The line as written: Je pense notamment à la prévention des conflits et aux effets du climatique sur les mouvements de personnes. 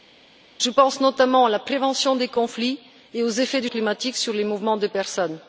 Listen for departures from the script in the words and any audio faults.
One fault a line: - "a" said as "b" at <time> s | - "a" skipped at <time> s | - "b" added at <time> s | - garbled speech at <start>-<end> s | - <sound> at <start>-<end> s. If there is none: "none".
none